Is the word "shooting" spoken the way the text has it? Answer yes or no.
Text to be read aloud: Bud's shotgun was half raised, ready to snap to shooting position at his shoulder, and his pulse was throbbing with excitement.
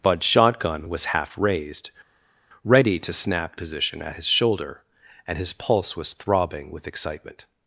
no